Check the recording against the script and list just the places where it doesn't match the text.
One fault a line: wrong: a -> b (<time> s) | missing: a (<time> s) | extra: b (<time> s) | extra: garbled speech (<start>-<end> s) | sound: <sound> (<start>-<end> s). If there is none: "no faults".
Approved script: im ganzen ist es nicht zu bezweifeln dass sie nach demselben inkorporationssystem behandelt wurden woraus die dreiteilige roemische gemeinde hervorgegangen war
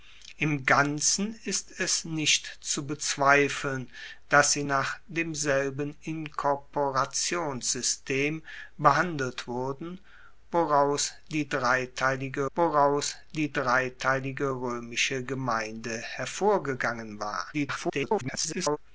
extra: woraus die dreiteilige (12.6 s)
extra: garbled speech (17.5-18.8 s)